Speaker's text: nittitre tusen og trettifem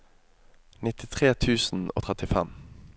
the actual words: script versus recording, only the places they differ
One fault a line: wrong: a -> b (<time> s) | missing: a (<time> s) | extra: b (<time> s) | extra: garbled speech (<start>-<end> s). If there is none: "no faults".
no faults